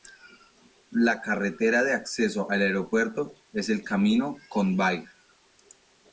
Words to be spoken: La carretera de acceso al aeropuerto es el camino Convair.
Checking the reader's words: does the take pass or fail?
pass